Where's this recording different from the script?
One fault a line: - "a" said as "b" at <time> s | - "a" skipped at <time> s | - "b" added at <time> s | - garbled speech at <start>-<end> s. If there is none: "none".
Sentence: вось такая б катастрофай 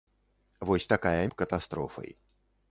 none